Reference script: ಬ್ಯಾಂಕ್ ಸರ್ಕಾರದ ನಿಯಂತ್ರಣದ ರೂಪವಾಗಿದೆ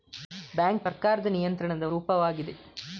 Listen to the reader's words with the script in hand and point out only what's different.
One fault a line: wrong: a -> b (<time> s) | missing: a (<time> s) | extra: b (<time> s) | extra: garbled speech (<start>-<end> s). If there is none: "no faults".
no faults